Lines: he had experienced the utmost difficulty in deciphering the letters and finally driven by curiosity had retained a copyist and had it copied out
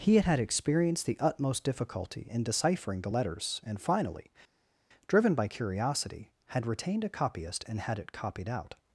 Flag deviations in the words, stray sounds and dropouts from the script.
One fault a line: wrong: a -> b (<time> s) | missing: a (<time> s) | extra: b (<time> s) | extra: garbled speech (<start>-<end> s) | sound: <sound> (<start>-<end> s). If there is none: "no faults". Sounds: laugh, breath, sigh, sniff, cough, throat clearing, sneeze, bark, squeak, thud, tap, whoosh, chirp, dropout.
extra: had (0.2 s)